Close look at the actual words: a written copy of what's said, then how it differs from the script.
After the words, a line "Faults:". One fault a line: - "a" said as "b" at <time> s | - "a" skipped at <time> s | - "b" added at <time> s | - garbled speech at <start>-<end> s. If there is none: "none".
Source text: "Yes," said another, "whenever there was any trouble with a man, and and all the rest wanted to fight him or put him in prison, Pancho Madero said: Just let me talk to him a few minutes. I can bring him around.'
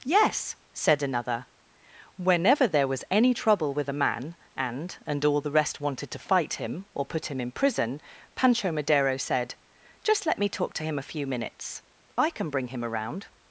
"Yes," said another, "whenever there was any trouble with a man, and and all the rest wanted to fight him or put him in prison, Pancho Madero said: Just let me talk to him a few minutes. I can bring him around.'
Faults:
none